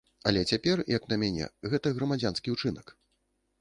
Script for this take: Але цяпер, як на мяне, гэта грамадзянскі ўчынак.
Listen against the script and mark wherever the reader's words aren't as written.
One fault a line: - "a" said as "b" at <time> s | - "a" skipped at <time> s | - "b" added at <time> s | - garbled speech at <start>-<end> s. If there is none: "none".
none